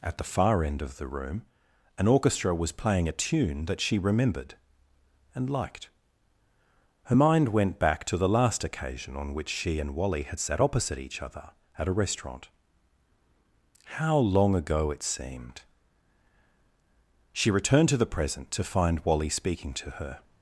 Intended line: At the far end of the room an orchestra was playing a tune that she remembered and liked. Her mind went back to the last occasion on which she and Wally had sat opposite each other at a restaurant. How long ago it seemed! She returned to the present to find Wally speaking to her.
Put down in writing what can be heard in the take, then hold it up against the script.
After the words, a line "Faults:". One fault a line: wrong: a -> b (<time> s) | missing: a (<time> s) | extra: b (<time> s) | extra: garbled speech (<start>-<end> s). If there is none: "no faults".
At the far end of the room an orchestra was playing a tune that she remembered and liked. Her mind went back to the last occasion on which she and Wally had sat opposite each other at a restaurant. How long ago it seemed! She returned to the present to find Wally speaking to her.
Faults:
no faults